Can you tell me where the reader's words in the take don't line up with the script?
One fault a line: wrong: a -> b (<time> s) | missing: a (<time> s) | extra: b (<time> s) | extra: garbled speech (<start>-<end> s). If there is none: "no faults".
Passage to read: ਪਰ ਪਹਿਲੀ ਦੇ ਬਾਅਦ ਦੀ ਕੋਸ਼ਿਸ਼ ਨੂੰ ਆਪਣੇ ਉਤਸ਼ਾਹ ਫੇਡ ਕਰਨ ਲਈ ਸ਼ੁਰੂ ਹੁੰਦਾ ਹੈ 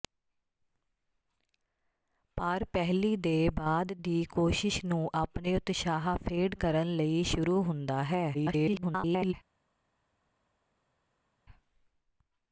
extra: garbled speech (8.3-9.3 s)